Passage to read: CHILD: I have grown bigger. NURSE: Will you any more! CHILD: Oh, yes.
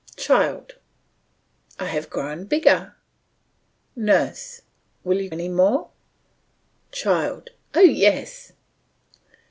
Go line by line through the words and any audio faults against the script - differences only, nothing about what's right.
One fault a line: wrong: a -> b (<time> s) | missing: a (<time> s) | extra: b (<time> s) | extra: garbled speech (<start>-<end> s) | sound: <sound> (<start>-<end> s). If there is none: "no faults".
no faults